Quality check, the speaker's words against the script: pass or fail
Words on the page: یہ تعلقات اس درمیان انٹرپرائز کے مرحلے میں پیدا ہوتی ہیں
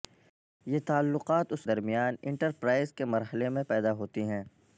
pass